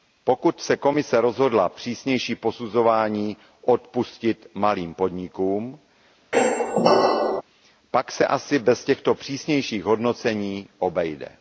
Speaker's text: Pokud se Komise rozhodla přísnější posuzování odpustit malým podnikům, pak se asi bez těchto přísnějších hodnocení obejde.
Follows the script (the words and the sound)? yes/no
no